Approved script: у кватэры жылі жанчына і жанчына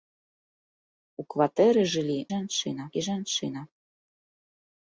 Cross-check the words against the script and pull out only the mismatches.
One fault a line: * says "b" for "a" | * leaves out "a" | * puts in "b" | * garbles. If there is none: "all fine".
all fine